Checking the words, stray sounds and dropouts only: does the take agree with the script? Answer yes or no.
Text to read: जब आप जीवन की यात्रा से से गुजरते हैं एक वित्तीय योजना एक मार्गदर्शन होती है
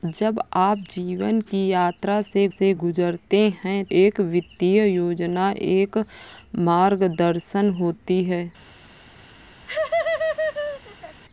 no